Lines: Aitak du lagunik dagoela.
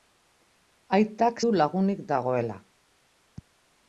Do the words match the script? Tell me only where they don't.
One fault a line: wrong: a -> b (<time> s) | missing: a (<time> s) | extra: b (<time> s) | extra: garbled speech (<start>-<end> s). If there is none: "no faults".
no faults